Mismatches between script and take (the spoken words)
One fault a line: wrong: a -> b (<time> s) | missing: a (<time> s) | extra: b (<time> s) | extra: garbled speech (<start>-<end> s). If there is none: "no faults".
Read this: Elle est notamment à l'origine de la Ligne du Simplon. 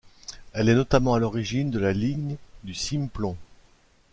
no faults